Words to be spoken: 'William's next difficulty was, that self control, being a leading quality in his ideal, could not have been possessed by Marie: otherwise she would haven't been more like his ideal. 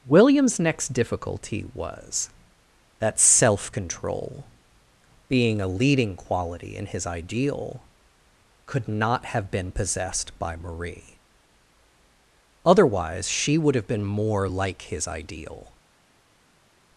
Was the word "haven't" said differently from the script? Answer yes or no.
yes